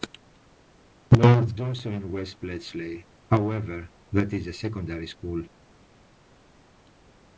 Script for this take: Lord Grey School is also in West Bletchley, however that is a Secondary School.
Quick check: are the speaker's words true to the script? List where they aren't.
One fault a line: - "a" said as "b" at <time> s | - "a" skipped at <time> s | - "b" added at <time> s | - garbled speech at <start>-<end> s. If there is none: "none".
- "Grey School is" skipped at 1.6 s